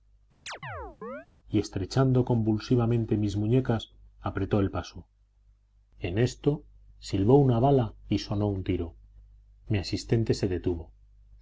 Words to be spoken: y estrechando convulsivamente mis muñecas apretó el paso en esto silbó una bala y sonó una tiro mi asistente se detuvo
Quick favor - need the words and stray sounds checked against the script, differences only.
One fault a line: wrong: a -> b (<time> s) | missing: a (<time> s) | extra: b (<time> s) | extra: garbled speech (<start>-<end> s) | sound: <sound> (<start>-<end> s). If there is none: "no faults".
sound: chirp (0.5-1.3 s)
wrong: una -> un (8.5 s)